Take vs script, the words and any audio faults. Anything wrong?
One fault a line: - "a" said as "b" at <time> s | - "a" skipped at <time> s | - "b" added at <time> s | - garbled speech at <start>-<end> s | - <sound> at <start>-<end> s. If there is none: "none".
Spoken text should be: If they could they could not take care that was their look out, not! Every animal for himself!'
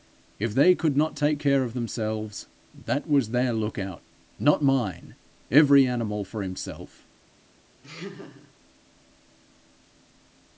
- "they could" skipped at 1.0 s
- "of themselves" added at 1.6 s
- "mine" added at 4.6 s
- laugh at 7.8-8.6 s